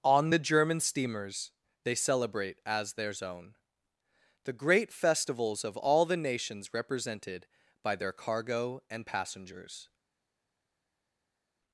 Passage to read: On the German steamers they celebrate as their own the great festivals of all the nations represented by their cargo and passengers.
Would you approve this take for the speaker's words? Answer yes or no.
no